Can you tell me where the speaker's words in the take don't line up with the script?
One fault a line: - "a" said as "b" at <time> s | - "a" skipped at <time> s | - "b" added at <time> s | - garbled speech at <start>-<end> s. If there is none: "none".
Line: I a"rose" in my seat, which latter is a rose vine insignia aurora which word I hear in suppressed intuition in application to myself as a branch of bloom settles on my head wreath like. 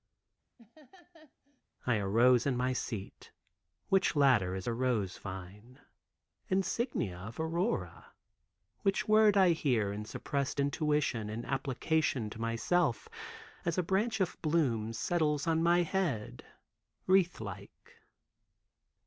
- "of" added at 7.2 s